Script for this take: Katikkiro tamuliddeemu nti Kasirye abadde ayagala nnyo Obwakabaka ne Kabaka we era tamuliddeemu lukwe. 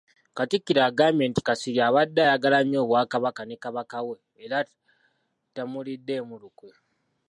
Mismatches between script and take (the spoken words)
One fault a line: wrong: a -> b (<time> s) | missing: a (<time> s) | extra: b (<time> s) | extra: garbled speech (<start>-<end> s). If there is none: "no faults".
wrong: tamuliddeemu -> agambye (0.9 s)